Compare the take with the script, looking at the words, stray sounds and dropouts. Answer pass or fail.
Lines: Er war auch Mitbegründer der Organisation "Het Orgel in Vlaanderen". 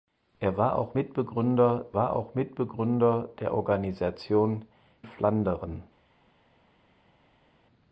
fail